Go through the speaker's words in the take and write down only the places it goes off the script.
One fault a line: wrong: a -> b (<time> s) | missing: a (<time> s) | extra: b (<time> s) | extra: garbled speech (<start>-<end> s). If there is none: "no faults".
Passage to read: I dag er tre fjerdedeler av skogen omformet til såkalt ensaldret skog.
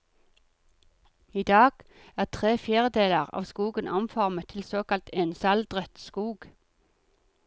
no faults